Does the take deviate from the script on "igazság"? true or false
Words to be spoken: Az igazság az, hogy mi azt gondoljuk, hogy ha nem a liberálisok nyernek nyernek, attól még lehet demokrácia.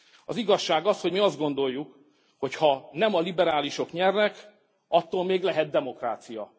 false